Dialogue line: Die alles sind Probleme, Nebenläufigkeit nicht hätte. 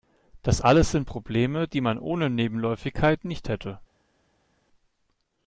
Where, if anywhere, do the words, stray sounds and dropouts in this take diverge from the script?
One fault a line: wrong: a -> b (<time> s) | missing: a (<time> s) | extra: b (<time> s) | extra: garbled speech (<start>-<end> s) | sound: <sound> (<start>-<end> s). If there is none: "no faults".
wrong: Die -> Das (0.4 s)
extra: die man ohne (1.6 s)